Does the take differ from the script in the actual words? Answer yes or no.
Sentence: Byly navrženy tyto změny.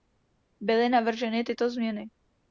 no